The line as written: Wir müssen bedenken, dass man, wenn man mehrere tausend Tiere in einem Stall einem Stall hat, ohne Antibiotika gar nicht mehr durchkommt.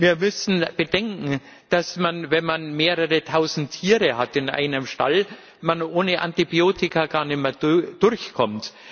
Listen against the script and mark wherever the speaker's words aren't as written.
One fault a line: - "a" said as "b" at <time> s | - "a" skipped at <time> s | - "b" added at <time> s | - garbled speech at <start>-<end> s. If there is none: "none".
- "einem Stall" skipped at 5.2 s